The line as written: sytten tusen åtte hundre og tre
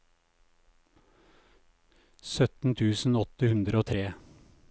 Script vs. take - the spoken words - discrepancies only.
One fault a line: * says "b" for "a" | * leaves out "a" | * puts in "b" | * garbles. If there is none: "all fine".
all fine